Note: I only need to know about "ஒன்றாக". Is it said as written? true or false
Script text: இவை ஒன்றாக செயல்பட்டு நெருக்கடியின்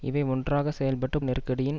true